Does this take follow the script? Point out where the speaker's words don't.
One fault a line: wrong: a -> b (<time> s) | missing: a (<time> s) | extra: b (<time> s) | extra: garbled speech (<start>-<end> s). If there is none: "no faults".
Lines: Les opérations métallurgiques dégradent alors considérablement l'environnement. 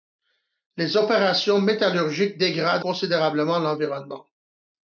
missing: alors (2.9 s)